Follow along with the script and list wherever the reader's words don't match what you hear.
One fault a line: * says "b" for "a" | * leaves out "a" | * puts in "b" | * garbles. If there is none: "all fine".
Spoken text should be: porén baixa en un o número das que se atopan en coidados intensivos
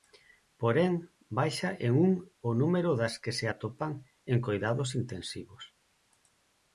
all fine